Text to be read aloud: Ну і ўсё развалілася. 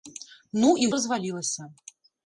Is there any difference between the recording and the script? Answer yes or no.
yes